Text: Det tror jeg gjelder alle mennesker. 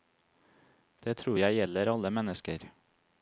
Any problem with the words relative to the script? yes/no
no